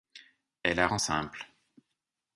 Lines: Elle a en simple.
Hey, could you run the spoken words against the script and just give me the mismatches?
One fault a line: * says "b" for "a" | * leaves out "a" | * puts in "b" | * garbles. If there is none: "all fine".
all fine